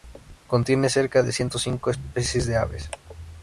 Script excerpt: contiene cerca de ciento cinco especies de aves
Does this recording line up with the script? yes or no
yes